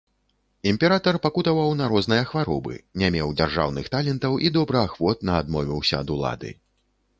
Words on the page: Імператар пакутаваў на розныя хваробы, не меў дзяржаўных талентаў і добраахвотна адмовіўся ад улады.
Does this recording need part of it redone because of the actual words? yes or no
no